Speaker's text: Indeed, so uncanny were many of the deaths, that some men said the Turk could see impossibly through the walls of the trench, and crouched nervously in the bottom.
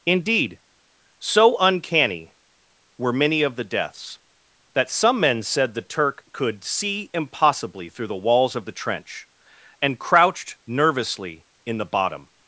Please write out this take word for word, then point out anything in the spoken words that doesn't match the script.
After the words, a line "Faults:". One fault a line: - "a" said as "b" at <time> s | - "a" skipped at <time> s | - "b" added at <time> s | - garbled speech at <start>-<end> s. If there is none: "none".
Indeed, so uncanny were many of the deaths, that some men said the Turk could see impossibly through the walls of the trench, and crouched nervously in the bottom.
Faults:
none